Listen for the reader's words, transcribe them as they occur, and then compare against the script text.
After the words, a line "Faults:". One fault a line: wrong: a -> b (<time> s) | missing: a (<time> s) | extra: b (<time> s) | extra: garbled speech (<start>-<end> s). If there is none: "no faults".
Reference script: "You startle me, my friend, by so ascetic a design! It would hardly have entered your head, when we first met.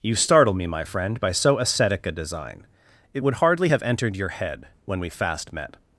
"You startle me, my friend, by so ascetic a design! It would hardly have entered your head, when we fast met.
Faults:
wrong: first -> fast (5.1 s)